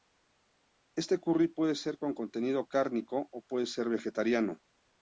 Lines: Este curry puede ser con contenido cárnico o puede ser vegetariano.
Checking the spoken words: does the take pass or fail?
pass